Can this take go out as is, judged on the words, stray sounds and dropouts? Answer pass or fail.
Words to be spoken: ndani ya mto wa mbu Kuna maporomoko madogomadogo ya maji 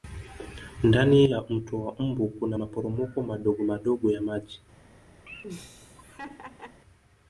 fail